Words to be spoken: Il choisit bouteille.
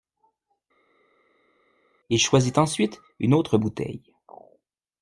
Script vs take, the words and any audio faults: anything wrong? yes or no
yes